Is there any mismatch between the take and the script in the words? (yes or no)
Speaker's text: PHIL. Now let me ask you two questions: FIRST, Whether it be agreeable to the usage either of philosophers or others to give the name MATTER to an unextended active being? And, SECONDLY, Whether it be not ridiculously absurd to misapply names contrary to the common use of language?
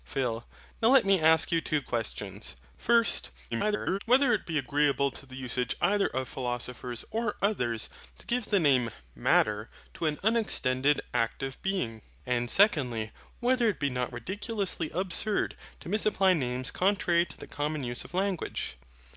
yes